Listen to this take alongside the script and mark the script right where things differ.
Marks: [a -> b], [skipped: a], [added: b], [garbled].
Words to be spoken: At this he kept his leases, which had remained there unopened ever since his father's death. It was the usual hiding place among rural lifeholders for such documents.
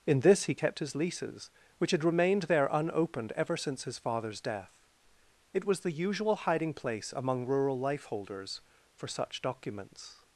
[At -> In] this he kept his leases, which had remained there unopened ever since his father's death. It was the usual hiding place among rural lifeholders for such documents.